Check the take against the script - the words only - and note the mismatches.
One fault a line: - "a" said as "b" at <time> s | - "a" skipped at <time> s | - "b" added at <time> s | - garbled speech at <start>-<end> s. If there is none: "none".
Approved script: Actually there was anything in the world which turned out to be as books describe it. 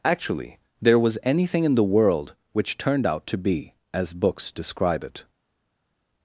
none